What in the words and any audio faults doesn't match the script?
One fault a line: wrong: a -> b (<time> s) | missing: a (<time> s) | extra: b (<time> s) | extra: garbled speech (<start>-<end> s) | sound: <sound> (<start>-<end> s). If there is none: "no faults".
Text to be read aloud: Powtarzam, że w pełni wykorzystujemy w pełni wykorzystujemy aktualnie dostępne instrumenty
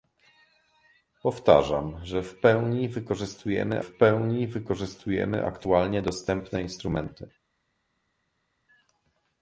no faults